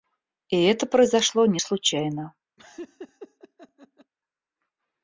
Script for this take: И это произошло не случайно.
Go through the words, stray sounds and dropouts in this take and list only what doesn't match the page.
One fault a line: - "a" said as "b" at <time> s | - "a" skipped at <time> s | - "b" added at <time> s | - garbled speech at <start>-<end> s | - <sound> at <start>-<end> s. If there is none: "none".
- laugh at 2.6-4.1 s